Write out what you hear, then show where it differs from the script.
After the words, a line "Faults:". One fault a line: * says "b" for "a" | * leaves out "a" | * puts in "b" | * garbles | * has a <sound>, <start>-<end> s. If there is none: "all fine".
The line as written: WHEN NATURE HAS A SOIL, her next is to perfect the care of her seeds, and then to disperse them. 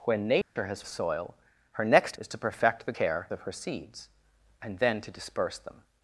WHEN NATURE HAS A SOIL, her next is to perfect the care of her seeds, and then to disperse them.
Faults:
* has a dropout, 0.4-0.6 s